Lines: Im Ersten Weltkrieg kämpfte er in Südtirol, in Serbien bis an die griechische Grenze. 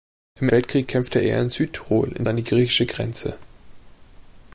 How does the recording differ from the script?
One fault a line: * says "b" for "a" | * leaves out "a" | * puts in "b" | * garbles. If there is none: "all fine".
* leaves out "Ersten"
* leaves out "Serbien bis"